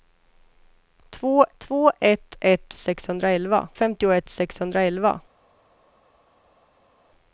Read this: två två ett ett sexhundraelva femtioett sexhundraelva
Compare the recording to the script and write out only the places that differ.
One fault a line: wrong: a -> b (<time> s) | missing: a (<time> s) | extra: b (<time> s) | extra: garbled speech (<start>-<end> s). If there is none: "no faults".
no faults